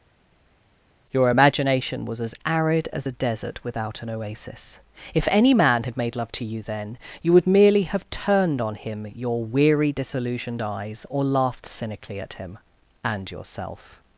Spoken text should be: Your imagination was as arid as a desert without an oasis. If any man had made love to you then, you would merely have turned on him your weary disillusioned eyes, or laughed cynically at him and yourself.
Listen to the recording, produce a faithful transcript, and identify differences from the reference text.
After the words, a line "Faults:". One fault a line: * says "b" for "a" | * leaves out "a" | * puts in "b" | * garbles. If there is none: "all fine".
Your imagination was as arid as a desert without an oasis. If any man had made love to you then, you would merely have turned on him your weary disillusioned eyes, or laughed cynically at him and yourself.
Faults:
all fine